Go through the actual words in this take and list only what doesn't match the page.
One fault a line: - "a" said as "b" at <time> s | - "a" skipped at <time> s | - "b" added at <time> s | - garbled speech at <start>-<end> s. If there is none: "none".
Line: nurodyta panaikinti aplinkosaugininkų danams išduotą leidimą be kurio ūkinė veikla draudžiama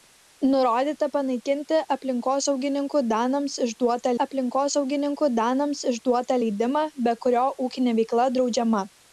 - "aplinkosaugininkų danams išduotą" added at 4.2 s